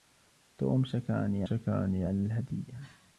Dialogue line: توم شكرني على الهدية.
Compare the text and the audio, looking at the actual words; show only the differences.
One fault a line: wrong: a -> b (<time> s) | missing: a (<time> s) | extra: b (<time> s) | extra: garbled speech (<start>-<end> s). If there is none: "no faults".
extra: شكرني (1.4 s)